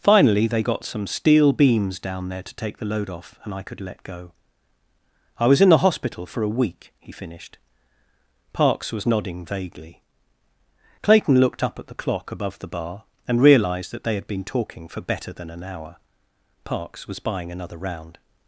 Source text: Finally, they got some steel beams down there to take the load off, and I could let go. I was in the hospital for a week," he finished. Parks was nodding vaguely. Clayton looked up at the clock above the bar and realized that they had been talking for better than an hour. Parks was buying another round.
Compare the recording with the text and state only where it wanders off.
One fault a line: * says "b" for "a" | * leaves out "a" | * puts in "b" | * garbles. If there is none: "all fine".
all fine